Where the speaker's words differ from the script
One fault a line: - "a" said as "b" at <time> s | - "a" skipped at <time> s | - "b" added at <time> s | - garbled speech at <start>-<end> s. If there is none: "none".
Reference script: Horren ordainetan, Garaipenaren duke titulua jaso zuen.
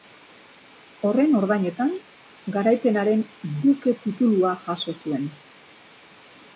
none